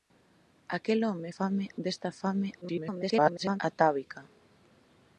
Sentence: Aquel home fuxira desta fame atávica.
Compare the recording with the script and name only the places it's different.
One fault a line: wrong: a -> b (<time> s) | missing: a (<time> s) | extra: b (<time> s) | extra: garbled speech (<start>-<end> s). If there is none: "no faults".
wrong: fuxira -> fame (1.4 s)
extra: garbled speech (2.6-3.6 s)